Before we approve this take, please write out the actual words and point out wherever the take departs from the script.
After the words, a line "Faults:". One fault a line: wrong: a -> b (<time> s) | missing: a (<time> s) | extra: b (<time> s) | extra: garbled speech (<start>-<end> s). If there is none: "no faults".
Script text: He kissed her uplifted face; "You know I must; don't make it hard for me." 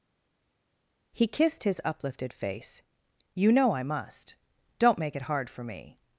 He kissed his uplifted face; "You know I must; don't make it hard for me."
Faults:
wrong: her -> his (1.6 s)